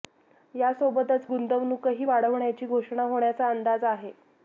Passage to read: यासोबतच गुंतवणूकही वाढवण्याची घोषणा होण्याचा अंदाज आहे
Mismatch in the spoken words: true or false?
false